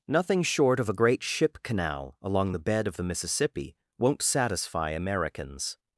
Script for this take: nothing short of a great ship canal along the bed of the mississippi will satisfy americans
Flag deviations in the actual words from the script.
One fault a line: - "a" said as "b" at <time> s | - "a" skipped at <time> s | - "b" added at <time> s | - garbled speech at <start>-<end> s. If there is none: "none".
- "will" said as "won't" at 4.0 s